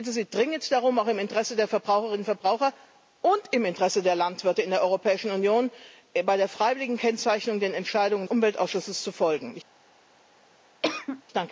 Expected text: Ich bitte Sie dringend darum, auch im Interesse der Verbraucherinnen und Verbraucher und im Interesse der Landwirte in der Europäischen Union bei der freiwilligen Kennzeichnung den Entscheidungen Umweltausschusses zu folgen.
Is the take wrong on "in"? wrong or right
right